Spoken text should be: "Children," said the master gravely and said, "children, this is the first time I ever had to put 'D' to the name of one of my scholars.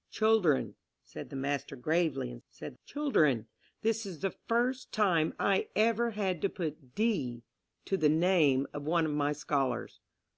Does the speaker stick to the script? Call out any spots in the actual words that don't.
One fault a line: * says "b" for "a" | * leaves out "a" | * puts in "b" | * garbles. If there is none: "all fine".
all fine